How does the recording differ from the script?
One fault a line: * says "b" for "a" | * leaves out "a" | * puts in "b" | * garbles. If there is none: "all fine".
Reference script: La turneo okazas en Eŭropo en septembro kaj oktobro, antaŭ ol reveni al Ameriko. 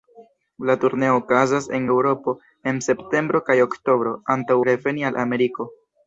* leaves out "ol"